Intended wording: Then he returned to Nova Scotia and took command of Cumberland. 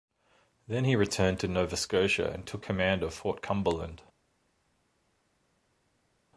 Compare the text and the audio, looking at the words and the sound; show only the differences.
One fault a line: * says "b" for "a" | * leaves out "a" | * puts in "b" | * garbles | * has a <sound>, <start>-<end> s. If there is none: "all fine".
* puts in "Fort"